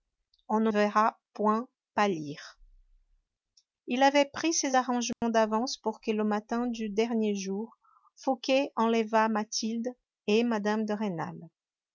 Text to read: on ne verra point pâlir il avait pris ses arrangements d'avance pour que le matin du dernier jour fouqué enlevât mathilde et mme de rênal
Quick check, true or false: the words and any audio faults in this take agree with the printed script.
false